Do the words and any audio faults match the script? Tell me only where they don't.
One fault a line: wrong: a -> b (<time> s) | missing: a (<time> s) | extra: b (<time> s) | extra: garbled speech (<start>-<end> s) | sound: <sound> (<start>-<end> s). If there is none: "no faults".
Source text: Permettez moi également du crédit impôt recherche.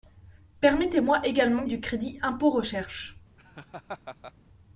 sound: laugh (3.4-4.3 s)